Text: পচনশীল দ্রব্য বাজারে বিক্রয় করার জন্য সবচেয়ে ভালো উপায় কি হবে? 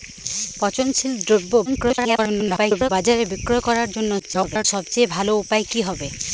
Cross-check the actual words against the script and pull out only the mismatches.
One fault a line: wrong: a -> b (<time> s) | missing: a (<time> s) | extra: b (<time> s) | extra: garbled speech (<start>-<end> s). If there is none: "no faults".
extra: garbled speech (1.7-2.9 s)
extra: garbled speech (4.2-4.6 s)